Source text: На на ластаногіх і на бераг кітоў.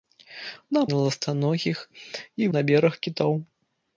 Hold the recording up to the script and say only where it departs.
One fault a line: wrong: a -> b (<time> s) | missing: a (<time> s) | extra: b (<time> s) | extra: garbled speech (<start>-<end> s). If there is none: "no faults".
no faults